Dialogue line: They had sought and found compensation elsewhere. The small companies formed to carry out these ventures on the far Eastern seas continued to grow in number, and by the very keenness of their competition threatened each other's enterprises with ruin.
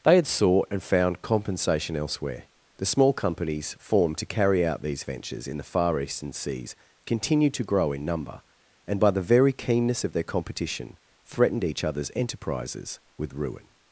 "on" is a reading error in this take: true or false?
true